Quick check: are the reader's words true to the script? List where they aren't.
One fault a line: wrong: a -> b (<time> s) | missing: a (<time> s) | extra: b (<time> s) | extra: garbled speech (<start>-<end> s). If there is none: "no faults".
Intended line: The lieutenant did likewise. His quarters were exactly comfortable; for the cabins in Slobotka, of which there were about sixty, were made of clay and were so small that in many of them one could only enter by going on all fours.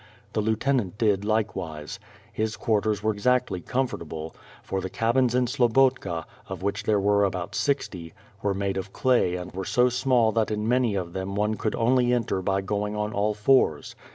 no faults